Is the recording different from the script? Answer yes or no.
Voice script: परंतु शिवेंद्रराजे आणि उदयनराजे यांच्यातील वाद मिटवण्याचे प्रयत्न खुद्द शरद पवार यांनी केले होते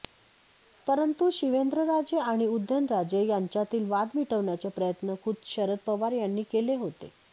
no